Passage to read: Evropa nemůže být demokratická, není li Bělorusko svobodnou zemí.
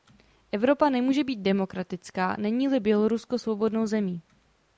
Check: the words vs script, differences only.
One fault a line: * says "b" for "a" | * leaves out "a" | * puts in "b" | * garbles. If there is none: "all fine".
all fine